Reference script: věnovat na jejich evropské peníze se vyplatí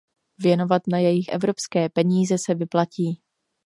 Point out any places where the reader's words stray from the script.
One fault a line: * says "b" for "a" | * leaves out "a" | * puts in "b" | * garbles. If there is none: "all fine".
all fine